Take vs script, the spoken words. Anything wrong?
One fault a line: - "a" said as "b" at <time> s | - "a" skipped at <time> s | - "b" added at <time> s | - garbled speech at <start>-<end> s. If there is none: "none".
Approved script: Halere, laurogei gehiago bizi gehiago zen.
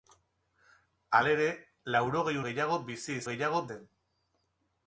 none